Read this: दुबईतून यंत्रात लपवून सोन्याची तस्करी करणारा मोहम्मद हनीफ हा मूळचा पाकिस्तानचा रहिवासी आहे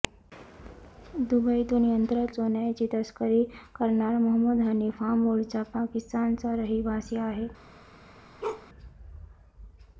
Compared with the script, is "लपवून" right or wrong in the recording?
wrong